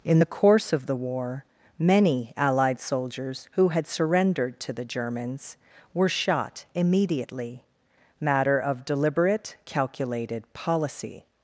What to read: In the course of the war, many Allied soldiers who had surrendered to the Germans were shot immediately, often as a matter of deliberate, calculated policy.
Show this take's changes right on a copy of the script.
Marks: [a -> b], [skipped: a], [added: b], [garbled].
In the course of the war, many Allied soldiers who had surrendered to the Germans were shot immediately, [skipped: often as a] matter of deliberate, calculated policy.